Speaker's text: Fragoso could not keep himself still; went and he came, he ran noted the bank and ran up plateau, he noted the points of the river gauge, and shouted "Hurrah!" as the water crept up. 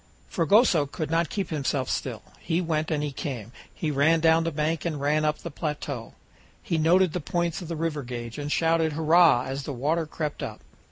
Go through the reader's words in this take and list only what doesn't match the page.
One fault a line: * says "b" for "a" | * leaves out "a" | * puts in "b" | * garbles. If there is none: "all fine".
* puts in "he"
* says "down" for "noted"
* puts in "the"